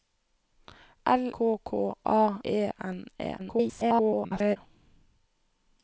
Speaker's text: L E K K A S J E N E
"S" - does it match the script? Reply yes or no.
no